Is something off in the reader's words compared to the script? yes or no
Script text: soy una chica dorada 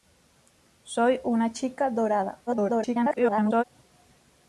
yes